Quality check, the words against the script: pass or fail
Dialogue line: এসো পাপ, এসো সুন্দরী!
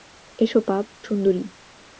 fail